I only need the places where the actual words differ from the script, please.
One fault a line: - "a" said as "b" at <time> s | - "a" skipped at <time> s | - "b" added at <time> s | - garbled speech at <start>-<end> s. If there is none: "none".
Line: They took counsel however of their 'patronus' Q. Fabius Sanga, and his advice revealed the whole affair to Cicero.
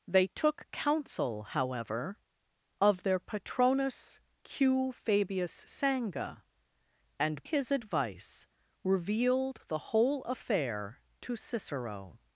none